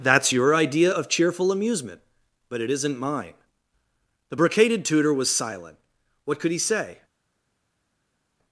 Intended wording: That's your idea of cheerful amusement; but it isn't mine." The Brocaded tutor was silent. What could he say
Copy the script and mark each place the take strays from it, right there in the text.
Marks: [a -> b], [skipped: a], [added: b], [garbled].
That's your idea of cheerful amusement; but it isn't mine." The Brocaded tutor was silent. What could he say